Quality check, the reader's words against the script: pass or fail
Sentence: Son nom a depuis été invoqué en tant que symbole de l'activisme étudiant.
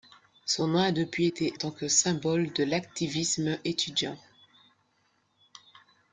fail